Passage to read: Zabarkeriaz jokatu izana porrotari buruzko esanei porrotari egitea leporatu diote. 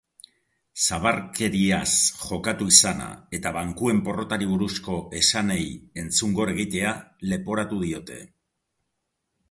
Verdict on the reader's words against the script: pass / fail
fail